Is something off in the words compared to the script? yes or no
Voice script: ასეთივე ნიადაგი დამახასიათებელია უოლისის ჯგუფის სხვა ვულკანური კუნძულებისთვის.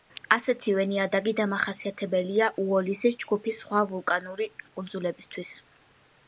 no